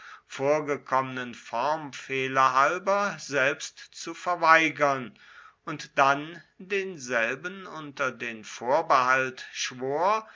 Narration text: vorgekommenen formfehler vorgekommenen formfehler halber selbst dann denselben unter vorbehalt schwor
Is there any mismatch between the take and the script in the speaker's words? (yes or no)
yes